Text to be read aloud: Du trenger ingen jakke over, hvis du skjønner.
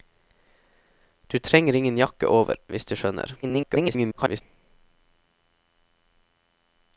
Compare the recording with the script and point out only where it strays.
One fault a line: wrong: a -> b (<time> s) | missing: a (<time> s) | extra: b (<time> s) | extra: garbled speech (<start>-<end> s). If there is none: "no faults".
extra: garbled speech (3.4-4.4 s)